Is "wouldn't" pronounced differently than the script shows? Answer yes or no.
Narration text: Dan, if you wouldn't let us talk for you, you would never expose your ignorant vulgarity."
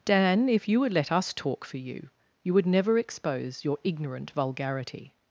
yes